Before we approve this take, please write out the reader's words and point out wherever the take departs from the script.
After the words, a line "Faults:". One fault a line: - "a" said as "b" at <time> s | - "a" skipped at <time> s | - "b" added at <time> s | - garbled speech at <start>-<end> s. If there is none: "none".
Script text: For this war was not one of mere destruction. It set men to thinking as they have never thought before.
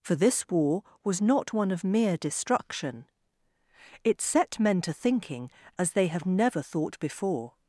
For this war was not one of mere destruction. It set men to thinking as they have never thought before.
Faults:
none